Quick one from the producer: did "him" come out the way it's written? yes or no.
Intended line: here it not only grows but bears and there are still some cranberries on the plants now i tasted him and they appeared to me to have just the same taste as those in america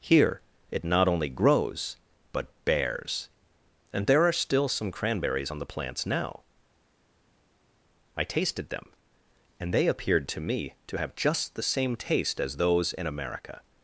no